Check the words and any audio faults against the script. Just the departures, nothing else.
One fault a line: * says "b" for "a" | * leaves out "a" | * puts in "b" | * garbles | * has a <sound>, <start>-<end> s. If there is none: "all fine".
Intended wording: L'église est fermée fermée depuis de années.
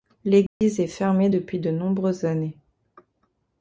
* has a dropout, 0.5-0.6 s
* leaves out "fermée"
* puts in "nombreuses"